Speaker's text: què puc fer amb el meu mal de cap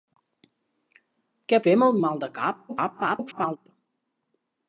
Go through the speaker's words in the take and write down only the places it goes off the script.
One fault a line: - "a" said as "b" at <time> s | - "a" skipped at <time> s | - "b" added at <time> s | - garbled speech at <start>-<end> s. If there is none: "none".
- "puc" skipped at 1.6 s
- "meu" skipped at 2.0 s
- garbled speech at 2.7-3.6 s